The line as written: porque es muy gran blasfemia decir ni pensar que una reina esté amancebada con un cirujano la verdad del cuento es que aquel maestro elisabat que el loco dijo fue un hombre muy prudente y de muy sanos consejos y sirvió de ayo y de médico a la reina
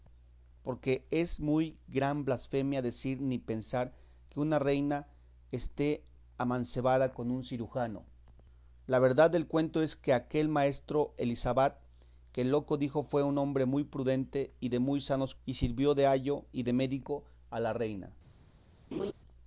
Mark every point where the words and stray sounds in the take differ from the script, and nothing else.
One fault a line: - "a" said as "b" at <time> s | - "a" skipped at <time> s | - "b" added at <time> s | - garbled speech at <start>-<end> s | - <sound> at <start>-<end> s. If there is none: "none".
- "consejos" skipped at 15.3 s
- laugh at 18.9-19.1 s